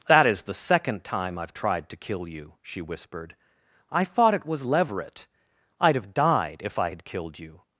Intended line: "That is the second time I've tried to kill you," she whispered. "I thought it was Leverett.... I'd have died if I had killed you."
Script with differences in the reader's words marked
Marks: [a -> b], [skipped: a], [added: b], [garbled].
"That is the second time I've tried to kill you," she whispered. "I thought it was Leverett.... I'd have died if I had killed you."